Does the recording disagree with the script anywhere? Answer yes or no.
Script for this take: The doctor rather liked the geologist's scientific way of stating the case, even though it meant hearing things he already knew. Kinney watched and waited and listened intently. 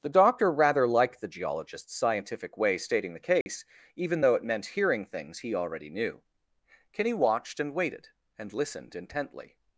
yes